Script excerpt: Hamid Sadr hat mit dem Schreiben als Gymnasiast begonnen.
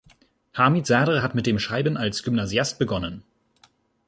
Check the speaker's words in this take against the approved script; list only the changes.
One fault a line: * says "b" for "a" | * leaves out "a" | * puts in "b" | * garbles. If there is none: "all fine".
all fine